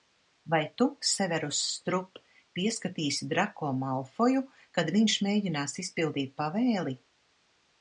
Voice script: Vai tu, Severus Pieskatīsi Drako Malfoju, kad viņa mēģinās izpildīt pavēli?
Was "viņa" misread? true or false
true